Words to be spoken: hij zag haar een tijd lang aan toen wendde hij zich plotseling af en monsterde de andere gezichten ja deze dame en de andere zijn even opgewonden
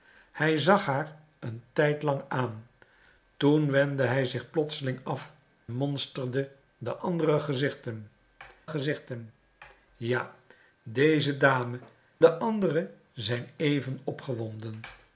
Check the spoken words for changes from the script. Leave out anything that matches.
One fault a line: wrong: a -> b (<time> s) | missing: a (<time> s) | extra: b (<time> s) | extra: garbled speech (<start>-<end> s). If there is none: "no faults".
missing: en (5.3 s)
extra: gezichten (8.7 s)
missing: en (11.8 s)